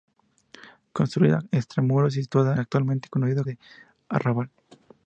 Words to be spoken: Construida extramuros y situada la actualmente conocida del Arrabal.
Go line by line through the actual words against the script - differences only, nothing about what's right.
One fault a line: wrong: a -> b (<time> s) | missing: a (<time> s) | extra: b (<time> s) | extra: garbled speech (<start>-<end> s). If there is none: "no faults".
no faults